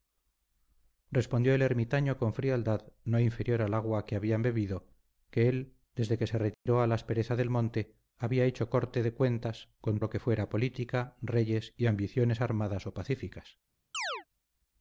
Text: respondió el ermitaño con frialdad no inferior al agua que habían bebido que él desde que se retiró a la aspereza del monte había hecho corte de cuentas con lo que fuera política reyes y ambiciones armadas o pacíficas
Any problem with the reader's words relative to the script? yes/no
no